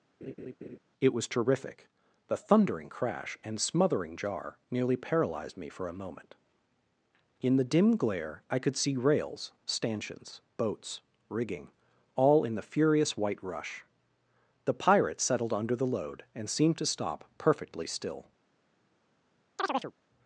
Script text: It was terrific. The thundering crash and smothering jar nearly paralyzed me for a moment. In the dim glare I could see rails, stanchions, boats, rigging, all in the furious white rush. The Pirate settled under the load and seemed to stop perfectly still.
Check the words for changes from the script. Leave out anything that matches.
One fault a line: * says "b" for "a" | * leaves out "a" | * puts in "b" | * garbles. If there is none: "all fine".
all fine